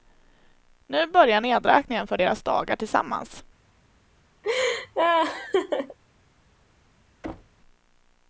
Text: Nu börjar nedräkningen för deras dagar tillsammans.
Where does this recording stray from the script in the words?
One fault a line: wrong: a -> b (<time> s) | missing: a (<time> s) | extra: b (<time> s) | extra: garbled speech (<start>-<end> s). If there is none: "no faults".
no faults